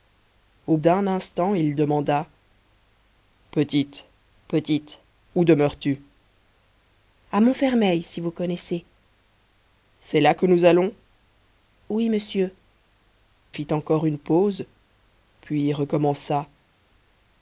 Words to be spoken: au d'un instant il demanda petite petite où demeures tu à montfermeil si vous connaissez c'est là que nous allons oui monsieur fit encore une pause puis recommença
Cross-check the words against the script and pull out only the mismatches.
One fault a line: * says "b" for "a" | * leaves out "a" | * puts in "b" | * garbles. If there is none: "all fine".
all fine